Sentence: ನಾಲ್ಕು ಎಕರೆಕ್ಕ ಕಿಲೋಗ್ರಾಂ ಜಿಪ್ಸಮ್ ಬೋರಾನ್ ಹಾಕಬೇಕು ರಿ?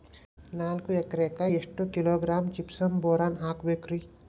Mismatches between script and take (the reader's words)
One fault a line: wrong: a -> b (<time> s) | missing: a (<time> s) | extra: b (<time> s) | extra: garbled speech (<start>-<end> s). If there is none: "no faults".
extra: ಎಷ್ಟು (1.5 s)